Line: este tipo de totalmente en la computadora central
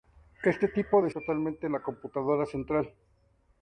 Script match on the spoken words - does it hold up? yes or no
yes